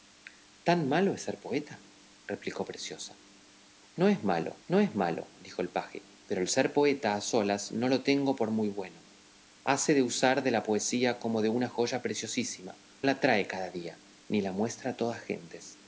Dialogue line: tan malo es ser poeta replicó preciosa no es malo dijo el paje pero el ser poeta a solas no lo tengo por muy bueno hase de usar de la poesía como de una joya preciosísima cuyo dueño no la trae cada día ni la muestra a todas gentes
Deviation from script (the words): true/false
true